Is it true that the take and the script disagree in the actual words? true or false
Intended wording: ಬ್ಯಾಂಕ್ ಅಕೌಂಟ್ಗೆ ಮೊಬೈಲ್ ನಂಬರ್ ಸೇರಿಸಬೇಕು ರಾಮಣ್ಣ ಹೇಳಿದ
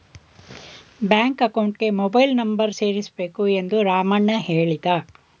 true